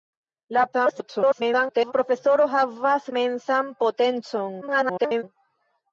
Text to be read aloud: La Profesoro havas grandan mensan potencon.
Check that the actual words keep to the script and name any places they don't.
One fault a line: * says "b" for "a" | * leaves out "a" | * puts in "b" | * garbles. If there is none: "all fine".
* garbles
* leaves out "grandan"
* garbles